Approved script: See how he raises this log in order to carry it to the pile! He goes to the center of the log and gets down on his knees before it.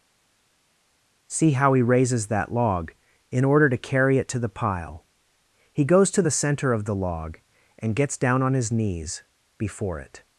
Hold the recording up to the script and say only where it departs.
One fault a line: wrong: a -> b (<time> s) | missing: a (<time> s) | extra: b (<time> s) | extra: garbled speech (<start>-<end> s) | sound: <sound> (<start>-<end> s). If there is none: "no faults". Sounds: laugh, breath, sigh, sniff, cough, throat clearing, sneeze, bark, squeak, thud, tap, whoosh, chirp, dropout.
wrong: this -> that (2.3 s)